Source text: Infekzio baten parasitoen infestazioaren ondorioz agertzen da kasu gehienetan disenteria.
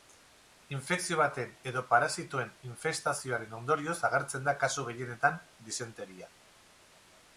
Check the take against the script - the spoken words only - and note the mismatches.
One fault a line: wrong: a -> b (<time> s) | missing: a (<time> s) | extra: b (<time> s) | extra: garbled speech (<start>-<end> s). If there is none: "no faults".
extra: edo (1.7 s)